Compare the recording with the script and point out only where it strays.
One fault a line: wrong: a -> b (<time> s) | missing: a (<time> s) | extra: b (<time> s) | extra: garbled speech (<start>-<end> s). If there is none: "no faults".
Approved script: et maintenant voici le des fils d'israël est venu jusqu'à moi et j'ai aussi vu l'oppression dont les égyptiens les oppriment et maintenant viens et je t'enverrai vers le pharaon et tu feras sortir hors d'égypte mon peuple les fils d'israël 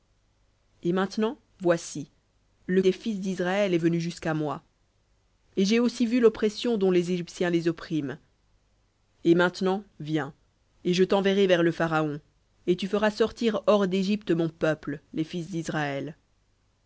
no faults